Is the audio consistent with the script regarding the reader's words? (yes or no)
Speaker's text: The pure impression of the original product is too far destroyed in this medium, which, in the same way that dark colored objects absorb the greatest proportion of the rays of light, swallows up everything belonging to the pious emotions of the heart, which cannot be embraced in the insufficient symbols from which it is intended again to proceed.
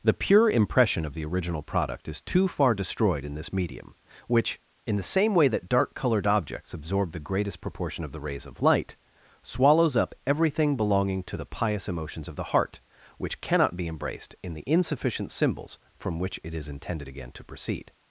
yes